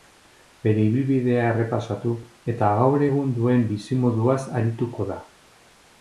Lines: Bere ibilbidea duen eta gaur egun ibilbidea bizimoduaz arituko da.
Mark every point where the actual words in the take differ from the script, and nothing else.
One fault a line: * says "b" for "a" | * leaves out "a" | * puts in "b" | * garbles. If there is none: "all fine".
* says "errepasatu" for "duen"
* says "duen" for "ibilbidea"